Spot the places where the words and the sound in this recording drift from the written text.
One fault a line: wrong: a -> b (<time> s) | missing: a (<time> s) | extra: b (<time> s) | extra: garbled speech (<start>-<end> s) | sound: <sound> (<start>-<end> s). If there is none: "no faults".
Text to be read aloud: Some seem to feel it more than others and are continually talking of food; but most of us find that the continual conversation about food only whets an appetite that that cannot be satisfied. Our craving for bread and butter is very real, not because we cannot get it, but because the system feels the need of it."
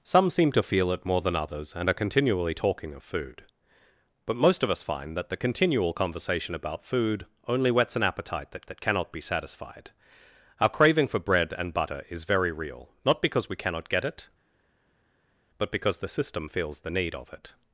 no faults